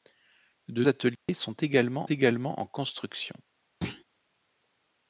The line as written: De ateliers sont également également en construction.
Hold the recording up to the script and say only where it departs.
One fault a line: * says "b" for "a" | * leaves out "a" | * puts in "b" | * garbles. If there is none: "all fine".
all fine